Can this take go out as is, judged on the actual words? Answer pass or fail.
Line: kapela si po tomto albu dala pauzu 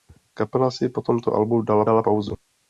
fail